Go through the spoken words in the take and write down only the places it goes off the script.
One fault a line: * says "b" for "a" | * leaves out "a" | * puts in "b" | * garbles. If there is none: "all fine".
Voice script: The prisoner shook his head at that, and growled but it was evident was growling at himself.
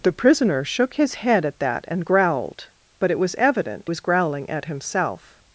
all fine